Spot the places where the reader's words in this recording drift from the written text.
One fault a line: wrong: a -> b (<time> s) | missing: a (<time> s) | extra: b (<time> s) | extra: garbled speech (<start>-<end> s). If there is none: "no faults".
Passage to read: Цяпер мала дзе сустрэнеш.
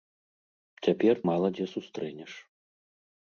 no faults